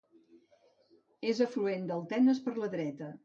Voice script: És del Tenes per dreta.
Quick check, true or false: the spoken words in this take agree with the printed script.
false